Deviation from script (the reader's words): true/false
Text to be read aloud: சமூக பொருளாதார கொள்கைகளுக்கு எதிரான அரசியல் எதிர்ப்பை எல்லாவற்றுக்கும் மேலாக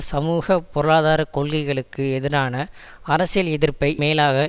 true